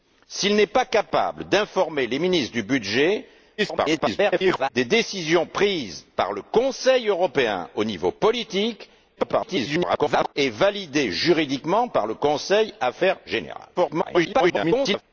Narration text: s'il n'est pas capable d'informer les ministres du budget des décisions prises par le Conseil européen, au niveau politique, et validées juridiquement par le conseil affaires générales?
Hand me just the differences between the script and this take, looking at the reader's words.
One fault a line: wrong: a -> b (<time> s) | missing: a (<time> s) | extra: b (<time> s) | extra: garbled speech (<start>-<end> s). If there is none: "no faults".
extra: garbled speech (3.6-4.7 s)
extra: garbled speech (9.2-10.3 s)
extra: garbled speech (13.7-15.0 s)